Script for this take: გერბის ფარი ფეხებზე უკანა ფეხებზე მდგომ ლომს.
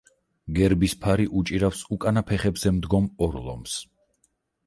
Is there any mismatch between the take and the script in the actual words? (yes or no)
yes